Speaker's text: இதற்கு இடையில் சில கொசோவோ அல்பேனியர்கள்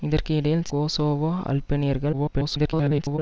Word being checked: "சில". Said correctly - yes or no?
no